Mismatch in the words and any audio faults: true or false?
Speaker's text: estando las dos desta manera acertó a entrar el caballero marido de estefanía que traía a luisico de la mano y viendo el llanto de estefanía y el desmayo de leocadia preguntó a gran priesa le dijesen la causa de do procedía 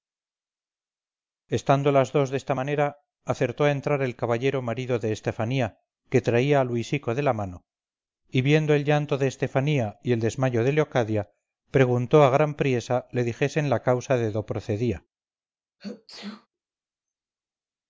true